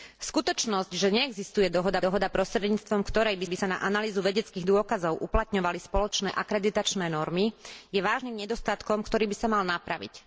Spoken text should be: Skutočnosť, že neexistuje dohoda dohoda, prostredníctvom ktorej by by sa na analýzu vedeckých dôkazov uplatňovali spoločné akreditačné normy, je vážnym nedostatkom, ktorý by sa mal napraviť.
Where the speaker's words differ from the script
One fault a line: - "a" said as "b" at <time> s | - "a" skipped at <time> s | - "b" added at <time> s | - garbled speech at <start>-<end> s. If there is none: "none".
none